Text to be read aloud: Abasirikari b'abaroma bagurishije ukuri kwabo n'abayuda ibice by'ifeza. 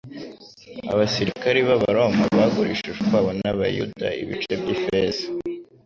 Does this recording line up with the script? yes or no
no